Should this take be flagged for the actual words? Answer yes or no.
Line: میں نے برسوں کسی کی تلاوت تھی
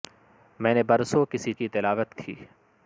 no